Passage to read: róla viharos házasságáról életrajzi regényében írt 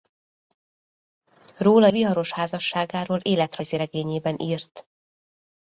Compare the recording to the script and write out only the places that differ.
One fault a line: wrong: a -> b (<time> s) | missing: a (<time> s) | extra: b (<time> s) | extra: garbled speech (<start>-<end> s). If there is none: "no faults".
no faults